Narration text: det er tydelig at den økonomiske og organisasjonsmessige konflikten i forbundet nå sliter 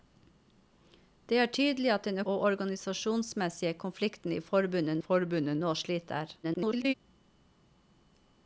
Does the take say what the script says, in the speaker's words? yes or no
no